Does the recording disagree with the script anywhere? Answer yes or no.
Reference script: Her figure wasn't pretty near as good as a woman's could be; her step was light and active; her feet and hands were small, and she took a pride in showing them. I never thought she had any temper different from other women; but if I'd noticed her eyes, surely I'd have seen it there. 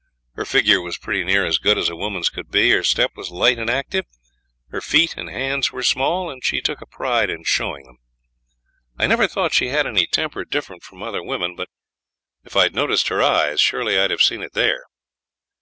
yes